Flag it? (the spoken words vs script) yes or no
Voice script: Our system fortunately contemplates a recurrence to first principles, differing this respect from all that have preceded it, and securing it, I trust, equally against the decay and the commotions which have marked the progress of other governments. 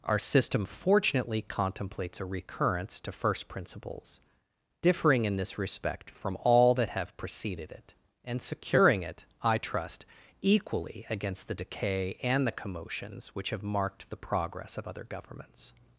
yes